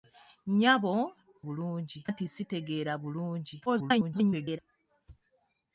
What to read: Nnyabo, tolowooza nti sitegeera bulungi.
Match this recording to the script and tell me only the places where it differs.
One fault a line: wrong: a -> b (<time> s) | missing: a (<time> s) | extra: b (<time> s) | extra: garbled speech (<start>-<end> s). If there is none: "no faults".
wrong: tolowooza -> bulungi (1.5 s)
extra: garbled speech (3.7-4.6 s)